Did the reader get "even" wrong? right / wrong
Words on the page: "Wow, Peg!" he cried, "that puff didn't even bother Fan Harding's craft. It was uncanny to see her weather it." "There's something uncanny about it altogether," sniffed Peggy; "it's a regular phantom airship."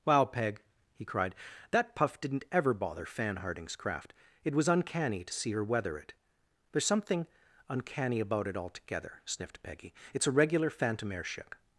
wrong